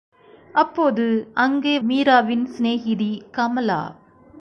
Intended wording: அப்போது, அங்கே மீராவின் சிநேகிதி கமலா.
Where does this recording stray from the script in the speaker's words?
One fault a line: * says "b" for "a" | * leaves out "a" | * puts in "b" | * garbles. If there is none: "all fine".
all fine